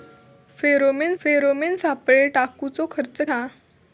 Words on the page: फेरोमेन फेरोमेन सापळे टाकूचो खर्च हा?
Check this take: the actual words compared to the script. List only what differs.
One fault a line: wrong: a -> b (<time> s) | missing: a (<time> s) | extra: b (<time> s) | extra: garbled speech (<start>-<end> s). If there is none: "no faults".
no faults